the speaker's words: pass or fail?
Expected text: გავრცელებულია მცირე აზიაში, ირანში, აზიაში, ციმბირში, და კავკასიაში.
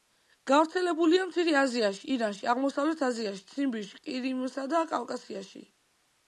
fail